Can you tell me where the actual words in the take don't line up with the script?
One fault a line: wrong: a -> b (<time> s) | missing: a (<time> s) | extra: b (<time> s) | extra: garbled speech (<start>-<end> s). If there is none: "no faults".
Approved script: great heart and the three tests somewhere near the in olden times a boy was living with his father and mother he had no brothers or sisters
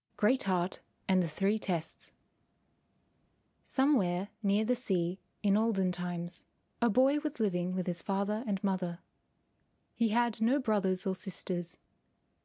extra: sea (4.8 s)